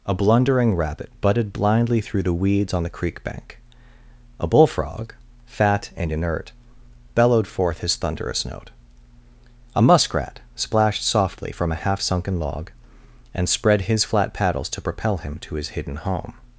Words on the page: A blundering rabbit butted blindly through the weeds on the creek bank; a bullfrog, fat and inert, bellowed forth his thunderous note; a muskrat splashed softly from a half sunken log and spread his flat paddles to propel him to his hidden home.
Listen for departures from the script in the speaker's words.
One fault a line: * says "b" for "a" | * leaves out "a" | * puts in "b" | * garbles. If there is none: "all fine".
all fine